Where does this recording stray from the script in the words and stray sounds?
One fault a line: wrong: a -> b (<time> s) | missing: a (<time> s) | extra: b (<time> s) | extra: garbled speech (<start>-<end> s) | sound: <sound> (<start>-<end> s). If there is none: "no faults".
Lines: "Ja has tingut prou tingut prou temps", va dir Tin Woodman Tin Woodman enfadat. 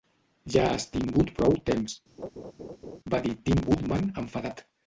missing: tingut prou (1.5 s)
sound: laugh (2.2-3.0 s)
missing: Tin Woodman (4.1 s)